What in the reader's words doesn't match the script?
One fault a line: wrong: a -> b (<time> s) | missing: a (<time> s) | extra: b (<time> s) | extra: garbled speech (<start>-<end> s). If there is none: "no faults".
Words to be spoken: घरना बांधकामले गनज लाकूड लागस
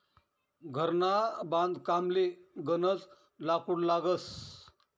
no faults